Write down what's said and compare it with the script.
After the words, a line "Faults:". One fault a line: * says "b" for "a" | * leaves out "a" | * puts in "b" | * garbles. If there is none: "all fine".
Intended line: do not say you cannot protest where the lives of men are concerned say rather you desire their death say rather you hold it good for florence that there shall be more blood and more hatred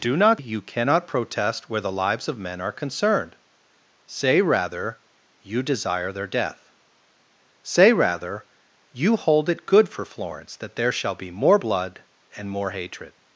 do not you cannot protest where the lives of men are concerned say rather you desire their death say rather you hold it good for florence that there shall be more blood and more hatred
Faults:
* leaves out "say"